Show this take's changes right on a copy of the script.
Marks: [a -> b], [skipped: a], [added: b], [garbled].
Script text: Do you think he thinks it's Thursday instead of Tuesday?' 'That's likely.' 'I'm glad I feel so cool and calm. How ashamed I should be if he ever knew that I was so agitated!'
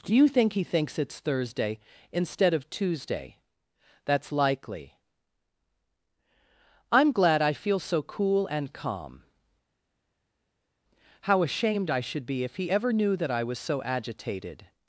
Do you think he thinks it's Thursday instead of Tuesday?' 'That's likely.' 'I'm glad I feel so cool and calm. How ashamed I should be if he ever knew that I was so agitated!'